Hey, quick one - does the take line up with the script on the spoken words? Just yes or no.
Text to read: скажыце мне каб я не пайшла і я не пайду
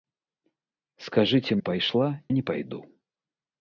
no